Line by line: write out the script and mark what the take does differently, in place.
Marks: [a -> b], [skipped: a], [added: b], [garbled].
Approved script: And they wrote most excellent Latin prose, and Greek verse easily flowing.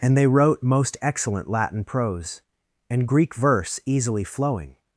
And they wrote most excellent Latin prose, and Greek verse easily flowing.